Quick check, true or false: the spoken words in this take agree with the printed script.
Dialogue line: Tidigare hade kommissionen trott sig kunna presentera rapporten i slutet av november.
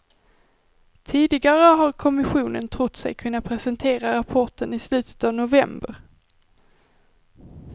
false